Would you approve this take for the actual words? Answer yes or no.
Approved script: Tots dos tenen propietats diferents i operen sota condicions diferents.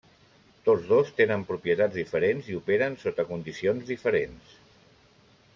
yes